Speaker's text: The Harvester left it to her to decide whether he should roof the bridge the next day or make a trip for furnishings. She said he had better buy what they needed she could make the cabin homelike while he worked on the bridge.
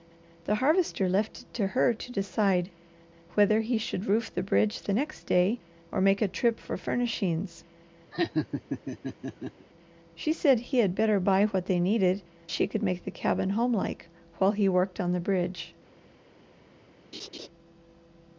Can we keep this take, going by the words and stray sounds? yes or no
no